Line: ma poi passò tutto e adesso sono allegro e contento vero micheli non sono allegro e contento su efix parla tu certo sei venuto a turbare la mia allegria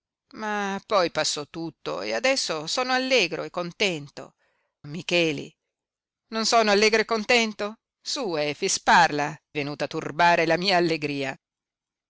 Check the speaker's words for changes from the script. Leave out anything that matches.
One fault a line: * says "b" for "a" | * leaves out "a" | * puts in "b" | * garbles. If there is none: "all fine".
* leaves out "vero"
* leaves out "tu certo sei"